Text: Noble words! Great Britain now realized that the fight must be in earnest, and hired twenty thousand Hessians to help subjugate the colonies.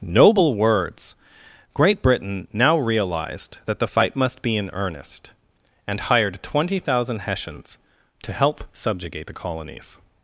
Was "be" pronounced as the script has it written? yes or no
yes